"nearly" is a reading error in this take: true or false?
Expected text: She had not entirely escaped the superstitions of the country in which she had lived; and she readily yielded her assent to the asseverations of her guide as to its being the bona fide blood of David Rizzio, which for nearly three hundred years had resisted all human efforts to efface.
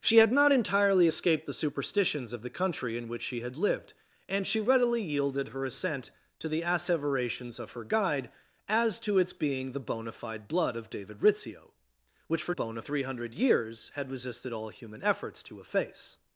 true